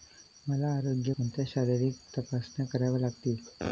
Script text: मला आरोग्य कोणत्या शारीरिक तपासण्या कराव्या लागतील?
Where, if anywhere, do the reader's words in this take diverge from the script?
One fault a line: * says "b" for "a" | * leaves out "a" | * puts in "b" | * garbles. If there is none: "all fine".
all fine